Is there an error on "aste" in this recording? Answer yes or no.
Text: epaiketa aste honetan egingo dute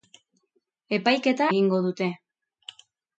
yes